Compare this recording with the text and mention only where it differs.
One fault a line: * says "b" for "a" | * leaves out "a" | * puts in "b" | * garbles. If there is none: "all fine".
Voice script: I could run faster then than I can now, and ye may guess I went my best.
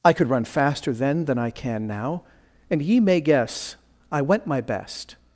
all fine